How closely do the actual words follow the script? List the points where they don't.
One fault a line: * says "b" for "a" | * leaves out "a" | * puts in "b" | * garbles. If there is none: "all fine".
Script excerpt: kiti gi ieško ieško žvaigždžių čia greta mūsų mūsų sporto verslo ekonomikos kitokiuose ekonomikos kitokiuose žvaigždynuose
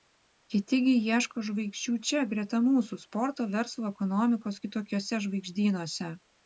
* leaves out "ieško"
* leaves out "mūsų"
* leaves out "ekonomikos kitokiuose"